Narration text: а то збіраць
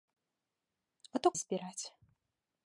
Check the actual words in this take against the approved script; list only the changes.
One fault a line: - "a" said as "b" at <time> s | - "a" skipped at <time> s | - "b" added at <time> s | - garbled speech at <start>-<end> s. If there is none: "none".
none